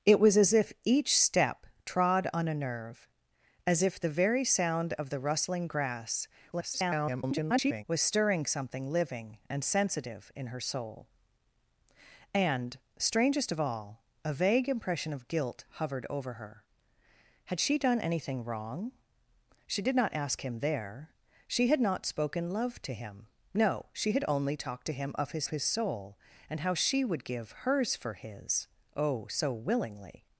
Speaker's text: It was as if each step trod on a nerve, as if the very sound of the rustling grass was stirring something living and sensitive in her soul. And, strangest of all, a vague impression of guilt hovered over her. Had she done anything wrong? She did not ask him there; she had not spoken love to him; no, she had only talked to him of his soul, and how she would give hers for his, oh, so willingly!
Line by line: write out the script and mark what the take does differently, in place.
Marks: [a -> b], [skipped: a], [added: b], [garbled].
It was as if each step trod on a nerve, as if the very sound of the rustling grass [garbled] was stirring something living and sensitive in her soul. And, strangest of all, a vague impression of guilt hovered over her. Had she done anything wrong? She did not ask him there; she had not spoken love to him; no, she had only talked to him of his [added: his] soul, and how she would give hers for his, oh, so willingly!